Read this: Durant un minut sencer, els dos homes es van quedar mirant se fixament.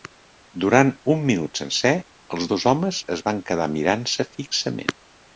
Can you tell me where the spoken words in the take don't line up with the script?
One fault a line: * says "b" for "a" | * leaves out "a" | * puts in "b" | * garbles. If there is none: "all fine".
all fine